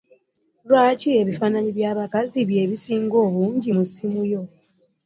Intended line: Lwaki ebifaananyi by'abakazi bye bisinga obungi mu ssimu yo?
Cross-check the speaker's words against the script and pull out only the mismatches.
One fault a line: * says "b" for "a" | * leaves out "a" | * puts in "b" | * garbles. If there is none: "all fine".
all fine